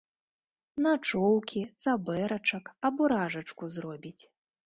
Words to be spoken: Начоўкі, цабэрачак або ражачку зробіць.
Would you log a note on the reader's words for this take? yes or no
no